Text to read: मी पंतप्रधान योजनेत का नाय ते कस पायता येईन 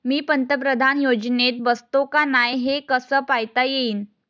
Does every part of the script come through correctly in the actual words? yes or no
no